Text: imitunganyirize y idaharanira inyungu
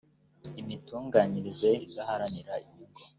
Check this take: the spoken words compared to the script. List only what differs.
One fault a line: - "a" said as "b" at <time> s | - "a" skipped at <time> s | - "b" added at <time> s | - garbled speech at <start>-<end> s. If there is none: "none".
none